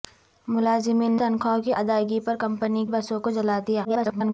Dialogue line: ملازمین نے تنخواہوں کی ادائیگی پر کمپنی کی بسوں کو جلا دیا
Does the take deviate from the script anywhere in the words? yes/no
yes